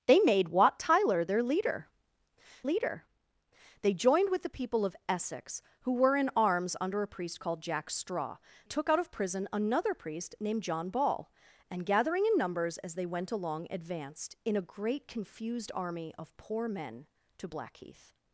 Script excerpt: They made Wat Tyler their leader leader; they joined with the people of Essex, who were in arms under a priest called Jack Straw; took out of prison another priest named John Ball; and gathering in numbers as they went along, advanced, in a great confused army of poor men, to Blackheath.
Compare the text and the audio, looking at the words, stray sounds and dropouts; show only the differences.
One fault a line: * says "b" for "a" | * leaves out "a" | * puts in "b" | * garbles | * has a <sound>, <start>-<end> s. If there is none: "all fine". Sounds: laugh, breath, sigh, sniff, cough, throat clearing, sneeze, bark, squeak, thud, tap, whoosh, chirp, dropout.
all fine